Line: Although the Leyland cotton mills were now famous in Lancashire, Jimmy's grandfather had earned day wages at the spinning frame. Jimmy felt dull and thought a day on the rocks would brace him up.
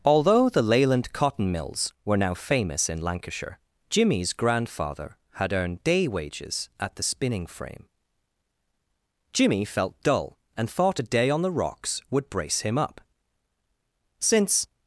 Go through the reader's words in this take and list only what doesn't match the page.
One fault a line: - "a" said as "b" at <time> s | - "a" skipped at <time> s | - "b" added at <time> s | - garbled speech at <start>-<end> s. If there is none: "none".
- "Since" added at 14.2 s